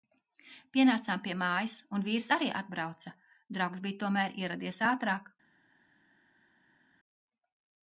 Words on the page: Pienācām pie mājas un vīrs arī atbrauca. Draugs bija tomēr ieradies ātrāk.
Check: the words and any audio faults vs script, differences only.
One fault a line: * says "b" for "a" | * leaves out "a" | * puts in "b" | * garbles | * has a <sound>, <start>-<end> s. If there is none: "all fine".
all fine